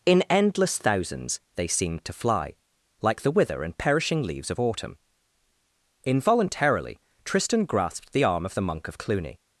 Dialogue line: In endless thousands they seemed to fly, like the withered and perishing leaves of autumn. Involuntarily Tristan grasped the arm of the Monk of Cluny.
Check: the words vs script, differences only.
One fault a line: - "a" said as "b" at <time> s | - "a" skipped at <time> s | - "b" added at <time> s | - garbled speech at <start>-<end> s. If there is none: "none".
- "withered" said as "wither" at 3.3 s